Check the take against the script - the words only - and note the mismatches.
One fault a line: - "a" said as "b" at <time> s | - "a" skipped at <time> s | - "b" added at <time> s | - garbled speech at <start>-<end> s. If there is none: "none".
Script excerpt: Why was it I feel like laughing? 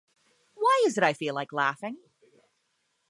- "was" said as "is" at 0.8 s